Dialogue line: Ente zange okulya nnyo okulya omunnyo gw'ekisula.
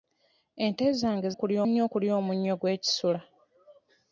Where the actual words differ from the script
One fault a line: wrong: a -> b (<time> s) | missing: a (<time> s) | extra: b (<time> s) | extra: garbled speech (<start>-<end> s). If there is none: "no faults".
no faults